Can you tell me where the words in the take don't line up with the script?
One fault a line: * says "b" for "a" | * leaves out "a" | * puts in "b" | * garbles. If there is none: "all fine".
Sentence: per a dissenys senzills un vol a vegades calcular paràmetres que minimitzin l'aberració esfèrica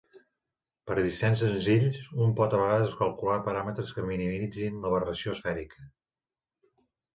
* says "pot" for "vol"